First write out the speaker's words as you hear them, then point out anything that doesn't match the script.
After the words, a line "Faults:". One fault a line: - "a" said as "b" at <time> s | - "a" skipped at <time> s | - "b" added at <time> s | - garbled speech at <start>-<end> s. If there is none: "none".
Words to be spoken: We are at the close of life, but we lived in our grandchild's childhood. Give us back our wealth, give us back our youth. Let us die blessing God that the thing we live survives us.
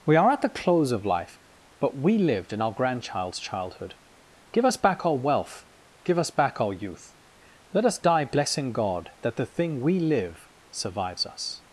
We are at the close of life, but we lived in our grandchild's childhood. Give us back our wealth, give us back our youth. Let us die blessing God that the thing we live survives us.
Faults:
none